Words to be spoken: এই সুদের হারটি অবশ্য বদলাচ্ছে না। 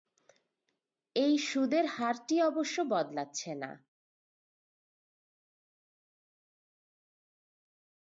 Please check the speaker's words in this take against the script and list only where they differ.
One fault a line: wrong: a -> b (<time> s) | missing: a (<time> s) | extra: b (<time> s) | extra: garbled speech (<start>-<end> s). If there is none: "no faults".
no faults